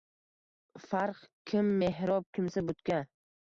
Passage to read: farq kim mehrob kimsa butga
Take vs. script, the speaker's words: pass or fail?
pass